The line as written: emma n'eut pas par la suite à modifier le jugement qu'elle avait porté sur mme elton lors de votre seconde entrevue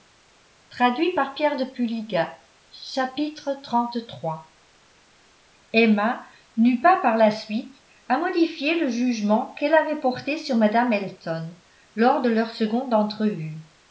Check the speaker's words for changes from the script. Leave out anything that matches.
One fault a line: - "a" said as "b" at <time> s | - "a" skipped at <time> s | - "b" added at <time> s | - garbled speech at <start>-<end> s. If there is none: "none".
- "votre" said as "leur" at 12.3 s